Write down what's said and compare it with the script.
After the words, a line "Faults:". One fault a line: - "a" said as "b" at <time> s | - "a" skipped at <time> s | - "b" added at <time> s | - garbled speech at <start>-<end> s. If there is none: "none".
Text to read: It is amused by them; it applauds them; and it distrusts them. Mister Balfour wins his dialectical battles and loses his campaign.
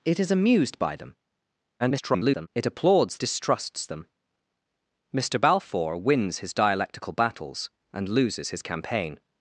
It is amused by them; [garbled] it applauds distrusts them. Mister Balfour wins his dialectical battles and loses his campaign.
Faults:
- garbled speech at 1.8-2.5 s
- "them and it" skipped at 3.2 s